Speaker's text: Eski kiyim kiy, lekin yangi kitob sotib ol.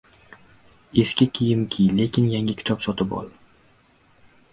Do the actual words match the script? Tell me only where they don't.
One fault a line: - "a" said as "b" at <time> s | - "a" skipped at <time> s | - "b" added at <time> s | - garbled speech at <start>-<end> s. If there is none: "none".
none